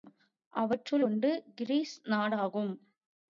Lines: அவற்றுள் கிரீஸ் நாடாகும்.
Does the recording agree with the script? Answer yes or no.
no